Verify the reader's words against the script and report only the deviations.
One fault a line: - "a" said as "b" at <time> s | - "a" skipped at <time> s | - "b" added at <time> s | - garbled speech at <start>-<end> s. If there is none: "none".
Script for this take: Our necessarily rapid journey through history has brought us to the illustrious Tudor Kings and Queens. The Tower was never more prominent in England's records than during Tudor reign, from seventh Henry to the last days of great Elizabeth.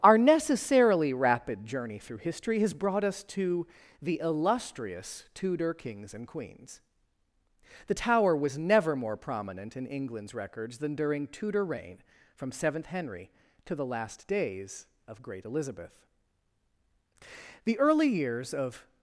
- "The early years of" added at 17.6 s